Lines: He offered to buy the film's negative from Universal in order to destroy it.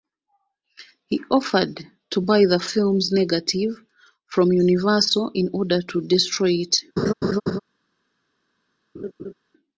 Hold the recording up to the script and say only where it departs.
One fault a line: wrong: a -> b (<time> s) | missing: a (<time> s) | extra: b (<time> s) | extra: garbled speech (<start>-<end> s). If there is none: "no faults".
no faults